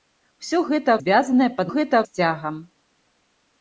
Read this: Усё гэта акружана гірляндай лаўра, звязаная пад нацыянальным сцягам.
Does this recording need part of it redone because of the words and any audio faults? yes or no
yes